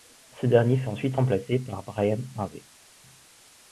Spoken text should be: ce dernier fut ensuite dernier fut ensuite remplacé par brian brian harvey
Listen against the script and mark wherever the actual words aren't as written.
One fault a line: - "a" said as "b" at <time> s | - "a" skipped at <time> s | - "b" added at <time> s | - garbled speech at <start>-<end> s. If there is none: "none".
- "dernier fut ensuite" skipped at 1.2 s
- "brian" skipped at 2.2 s